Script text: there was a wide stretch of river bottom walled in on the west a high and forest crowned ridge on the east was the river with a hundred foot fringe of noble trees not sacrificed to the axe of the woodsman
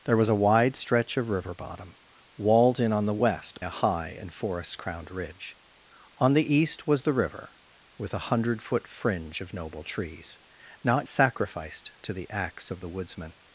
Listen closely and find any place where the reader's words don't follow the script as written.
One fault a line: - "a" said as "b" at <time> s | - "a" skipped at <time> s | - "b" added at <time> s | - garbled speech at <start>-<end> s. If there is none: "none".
none